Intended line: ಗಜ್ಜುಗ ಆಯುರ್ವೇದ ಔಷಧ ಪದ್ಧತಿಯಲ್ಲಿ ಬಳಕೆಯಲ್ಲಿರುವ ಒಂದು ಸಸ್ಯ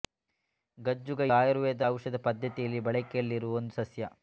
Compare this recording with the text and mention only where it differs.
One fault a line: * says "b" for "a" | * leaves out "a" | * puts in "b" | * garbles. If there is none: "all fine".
all fine